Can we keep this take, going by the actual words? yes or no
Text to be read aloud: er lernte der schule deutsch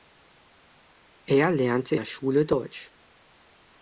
yes